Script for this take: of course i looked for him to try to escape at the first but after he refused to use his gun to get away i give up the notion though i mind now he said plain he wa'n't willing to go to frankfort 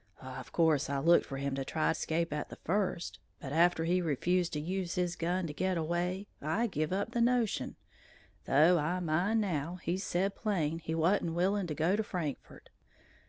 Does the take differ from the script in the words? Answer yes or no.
yes